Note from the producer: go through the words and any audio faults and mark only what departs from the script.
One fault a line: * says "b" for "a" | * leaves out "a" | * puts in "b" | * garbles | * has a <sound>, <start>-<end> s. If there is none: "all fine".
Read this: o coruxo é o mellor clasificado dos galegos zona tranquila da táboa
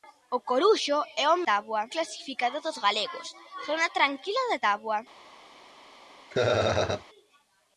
* says "táboa" for "mellor"
* has a laugh, 6.3-7.1 s